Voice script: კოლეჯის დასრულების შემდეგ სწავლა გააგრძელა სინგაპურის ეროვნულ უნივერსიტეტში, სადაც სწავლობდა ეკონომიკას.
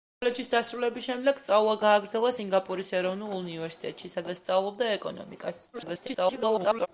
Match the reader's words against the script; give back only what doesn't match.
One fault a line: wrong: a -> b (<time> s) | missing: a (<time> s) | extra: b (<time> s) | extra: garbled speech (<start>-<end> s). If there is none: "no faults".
extra: garbled speech (5.7-6.9 s)